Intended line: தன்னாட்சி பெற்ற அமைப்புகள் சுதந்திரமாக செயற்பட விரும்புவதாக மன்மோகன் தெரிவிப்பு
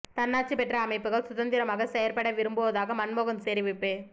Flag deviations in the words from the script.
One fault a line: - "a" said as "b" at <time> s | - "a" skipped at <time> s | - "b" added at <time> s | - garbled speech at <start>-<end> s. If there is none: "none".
none